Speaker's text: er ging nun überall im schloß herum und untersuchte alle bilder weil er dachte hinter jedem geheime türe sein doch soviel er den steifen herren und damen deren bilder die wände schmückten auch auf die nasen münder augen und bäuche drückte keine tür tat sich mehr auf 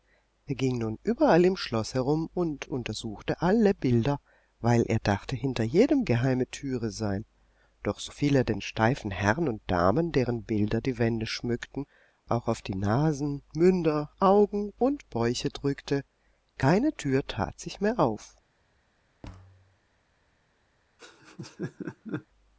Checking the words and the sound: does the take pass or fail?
fail